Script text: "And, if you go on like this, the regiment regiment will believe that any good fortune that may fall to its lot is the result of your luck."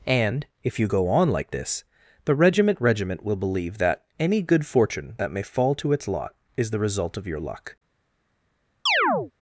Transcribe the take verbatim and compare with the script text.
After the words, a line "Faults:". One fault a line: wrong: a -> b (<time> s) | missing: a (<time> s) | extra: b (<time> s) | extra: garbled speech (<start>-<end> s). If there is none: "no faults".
"And, if you go on like this, the regiment regiment will believe that any good fortune that may fall to its lot is the result of your luck."
Faults:
no faults